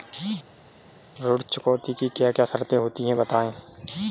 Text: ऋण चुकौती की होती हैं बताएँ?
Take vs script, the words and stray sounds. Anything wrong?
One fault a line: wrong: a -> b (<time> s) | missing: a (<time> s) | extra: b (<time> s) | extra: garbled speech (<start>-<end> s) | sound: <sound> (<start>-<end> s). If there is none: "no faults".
extra: क्या क्या शर्तें (2.1 s)